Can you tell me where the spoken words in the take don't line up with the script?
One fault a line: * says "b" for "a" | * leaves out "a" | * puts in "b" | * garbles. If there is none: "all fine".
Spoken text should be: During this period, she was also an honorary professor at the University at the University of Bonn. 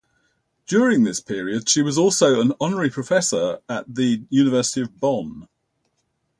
* leaves out "at the University"